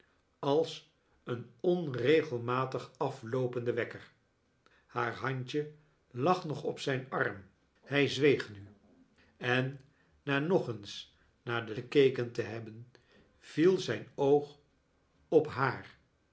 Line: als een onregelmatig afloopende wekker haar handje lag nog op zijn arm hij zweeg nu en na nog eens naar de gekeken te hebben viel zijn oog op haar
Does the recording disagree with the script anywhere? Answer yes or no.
no